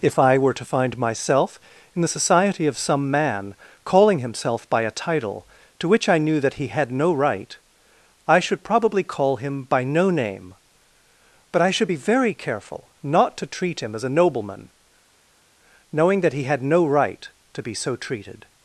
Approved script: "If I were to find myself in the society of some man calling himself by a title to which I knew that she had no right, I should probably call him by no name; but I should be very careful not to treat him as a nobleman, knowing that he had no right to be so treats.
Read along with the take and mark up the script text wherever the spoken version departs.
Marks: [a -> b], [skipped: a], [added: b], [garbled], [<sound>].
"If I were to find myself in the society of some man calling himself by a title to which I knew that [she -> he] had no right, I should probably call him by no name; but I should be very careful not to treat him as a nobleman, knowing that he had no right to be so [treats. -> treated]